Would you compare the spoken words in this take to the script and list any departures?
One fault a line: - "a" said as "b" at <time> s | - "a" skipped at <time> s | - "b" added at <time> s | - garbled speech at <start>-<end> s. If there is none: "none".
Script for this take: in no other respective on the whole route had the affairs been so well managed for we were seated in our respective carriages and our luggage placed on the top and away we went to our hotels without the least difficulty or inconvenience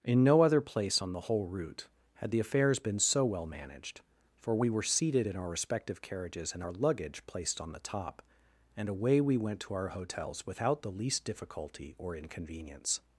- "respective" said as "place" at 0.6 s